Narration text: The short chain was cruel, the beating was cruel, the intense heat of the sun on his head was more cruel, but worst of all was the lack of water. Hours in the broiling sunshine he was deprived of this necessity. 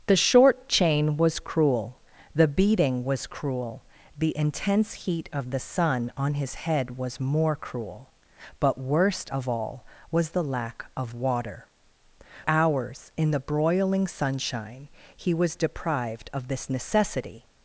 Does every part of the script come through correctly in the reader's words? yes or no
yes